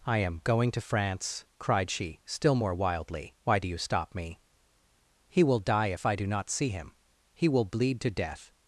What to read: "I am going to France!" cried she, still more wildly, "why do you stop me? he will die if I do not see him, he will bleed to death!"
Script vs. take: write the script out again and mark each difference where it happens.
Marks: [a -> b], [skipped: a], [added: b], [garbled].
"I am going to France!" cried she, still more wildly, "why do you stop me? he will die if I do not see him, he will bleed to death!"